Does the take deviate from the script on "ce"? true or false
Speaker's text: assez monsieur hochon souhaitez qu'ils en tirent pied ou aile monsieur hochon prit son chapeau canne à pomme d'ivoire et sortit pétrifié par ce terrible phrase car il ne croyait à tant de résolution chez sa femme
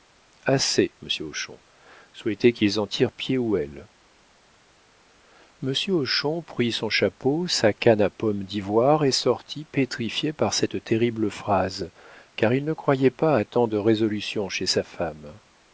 true